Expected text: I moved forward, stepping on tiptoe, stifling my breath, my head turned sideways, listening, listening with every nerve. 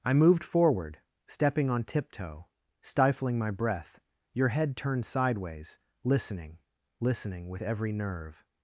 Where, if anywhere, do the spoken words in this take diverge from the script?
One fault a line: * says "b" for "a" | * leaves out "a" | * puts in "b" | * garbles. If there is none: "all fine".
* says "your" for "my"